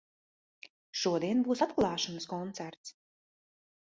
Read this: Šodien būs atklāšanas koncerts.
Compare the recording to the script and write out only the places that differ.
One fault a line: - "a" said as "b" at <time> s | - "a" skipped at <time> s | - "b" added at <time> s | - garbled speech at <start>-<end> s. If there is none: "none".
none